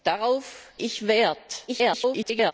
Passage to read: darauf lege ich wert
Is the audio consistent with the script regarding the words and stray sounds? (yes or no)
no